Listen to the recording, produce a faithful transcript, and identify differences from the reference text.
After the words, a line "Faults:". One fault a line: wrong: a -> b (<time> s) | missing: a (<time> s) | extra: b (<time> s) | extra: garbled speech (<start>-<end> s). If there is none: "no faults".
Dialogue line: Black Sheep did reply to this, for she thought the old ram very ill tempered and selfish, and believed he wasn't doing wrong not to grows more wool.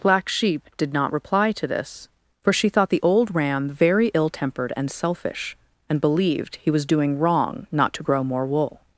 Black Sheep did not reply to this, for she thought the old ram very ill tempered and selfish, and believed he was doing wrong not to grow more wool.
Faults:
extra: not (0.9 s)
wrong: wasn't -> was (6.7 s)
wrong: grows -> grow (8.0 s)